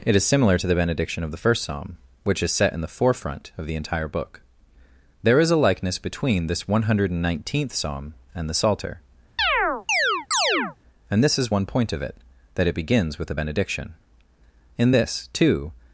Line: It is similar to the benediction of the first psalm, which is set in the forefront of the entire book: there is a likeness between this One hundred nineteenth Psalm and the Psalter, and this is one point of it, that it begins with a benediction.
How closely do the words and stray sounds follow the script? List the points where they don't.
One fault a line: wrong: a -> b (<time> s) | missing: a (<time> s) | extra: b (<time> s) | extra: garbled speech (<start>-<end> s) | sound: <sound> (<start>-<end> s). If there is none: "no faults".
sound: chirp (9.4-10.8 s)
extra: In this too (14.8 s)